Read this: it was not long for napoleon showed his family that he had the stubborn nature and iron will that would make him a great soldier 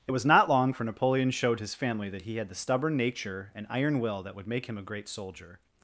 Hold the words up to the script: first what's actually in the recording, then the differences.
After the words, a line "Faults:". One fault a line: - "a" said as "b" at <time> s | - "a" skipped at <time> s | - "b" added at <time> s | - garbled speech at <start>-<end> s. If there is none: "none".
it was not long for napoleon showed his family that he had the stubborn nature and iron will that would make him a great soldier
Faults:
none